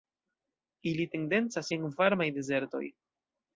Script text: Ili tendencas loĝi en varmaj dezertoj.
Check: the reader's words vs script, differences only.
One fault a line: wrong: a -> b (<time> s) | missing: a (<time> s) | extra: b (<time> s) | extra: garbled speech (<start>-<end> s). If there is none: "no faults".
missing: loĝi (1.7 s)